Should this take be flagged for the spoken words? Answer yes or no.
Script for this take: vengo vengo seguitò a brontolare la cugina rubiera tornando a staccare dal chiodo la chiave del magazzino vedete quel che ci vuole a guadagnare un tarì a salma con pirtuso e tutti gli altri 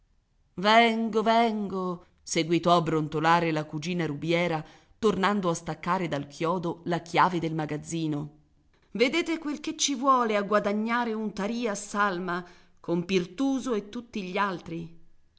no